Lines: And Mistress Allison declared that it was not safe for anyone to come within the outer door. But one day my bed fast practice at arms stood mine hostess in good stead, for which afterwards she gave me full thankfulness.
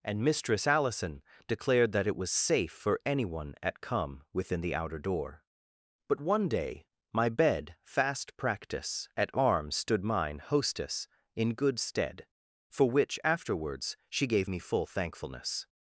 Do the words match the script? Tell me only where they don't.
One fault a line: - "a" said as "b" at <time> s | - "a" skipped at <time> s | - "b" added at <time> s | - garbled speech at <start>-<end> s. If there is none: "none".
- "not" skipped at 2.3 s
- "to" said as "at" at 3.6 s